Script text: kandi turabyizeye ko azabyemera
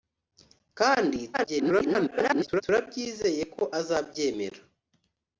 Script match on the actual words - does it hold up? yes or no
no